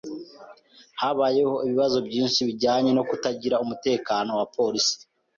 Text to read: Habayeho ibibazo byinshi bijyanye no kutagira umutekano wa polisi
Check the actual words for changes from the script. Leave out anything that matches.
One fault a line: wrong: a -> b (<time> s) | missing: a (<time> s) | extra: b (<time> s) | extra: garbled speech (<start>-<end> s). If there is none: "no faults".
no faults